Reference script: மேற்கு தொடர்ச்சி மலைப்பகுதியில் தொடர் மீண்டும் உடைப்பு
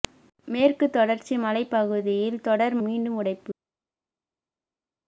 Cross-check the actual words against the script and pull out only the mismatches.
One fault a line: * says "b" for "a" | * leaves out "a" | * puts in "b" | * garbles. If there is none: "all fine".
all fine